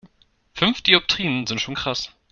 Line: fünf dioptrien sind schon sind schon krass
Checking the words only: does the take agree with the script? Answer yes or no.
no